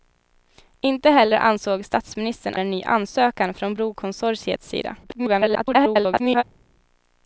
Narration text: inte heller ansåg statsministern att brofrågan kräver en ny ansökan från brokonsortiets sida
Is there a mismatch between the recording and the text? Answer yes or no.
yes